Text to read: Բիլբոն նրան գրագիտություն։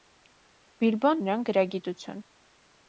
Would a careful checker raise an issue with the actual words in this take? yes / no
no